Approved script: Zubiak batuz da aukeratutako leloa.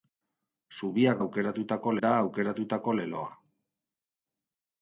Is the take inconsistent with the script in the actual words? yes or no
yes